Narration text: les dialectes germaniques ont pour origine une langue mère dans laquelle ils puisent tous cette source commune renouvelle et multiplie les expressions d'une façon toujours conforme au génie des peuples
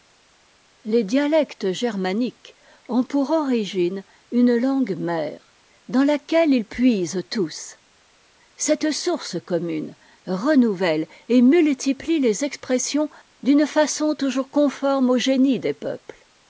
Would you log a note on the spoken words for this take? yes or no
no